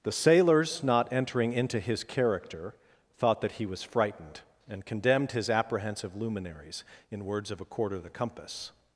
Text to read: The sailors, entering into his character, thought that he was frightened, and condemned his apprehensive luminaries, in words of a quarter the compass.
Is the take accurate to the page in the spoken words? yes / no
no